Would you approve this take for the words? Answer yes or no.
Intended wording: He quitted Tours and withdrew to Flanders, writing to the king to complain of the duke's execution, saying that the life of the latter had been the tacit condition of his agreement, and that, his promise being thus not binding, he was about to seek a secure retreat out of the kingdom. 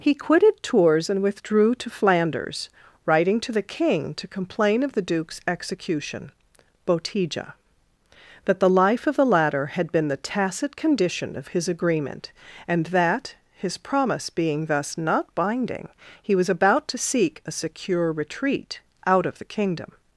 no